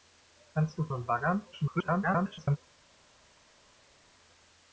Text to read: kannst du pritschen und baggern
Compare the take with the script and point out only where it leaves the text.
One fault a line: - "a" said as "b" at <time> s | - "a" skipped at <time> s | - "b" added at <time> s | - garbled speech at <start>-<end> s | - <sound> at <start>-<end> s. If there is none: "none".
- "pritschen" skipped at 0.9 s
- garbled speech at 1.5-2.6 s